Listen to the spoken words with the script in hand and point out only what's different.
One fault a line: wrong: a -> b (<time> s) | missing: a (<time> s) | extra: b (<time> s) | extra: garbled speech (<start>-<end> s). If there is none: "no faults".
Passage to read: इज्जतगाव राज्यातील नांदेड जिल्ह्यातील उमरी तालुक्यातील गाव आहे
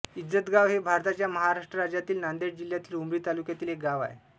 extra: हे भारताच्या महाराष्ट्र (0.7 s)
extra: एक (3.7 s)